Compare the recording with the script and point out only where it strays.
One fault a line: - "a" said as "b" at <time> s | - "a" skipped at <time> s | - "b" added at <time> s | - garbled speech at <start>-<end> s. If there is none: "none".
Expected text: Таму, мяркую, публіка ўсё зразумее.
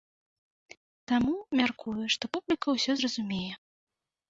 - "што" added at 2.2 s